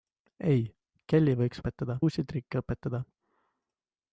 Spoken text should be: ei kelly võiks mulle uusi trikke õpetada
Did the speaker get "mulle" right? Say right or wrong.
wrong